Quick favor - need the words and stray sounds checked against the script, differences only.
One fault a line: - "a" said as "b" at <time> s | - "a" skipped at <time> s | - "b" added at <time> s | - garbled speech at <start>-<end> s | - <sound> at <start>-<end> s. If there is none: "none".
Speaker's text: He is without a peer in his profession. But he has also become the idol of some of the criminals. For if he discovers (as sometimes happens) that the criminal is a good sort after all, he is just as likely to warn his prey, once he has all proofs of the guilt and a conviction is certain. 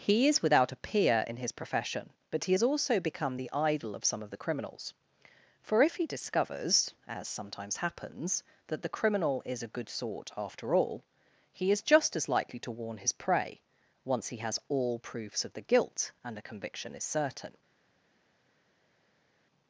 none